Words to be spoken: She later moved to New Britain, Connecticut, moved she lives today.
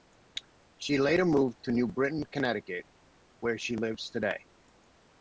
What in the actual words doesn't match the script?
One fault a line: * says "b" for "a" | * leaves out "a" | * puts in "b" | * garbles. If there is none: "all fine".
* says "where" for "moved"